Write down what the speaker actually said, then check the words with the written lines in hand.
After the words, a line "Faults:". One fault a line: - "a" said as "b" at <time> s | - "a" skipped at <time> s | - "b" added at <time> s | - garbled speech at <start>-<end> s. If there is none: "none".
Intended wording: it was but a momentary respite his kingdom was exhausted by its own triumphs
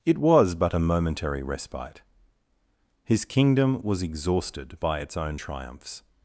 it was but a momentary respite his kingdom was exhausted by its own triumphs
Faults:
none